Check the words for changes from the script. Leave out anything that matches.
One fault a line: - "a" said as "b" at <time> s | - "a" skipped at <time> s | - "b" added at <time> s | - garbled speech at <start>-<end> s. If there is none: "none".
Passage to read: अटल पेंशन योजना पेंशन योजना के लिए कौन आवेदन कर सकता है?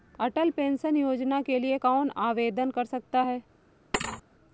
- "पेंशन योजना" skipped at 1.4 s